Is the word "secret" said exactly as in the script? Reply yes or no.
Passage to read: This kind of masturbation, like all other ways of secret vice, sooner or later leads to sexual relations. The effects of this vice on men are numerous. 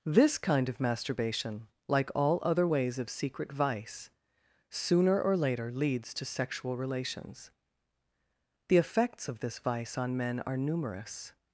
yes